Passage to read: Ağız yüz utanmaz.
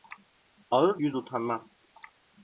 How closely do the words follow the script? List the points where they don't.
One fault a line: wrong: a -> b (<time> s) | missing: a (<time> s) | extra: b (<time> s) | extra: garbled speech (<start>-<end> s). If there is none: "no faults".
no faults